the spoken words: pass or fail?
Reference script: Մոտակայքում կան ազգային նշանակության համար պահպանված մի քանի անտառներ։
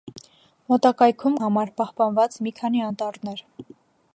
fail